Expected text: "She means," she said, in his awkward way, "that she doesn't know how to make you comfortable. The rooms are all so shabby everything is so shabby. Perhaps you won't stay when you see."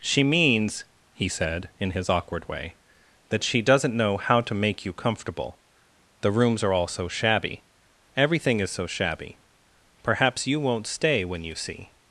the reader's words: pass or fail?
fail